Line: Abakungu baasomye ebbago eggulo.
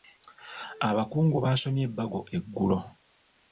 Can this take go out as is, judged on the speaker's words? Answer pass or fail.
pass